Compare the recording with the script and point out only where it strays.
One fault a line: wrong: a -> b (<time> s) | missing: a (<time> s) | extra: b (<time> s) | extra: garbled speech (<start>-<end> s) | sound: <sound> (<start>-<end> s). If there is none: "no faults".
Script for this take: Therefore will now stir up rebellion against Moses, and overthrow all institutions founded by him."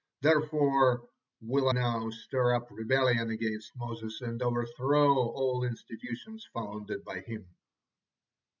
no faults